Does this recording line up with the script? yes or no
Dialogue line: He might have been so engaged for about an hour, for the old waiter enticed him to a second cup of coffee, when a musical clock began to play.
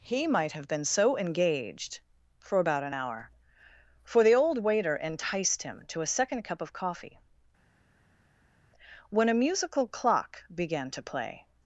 yes